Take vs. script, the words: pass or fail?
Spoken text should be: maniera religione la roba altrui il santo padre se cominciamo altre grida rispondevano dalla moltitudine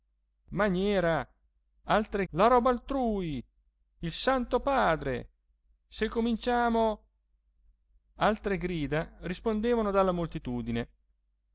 fail